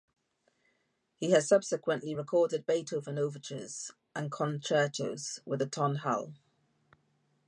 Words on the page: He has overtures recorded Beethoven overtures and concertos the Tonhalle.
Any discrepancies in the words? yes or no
yes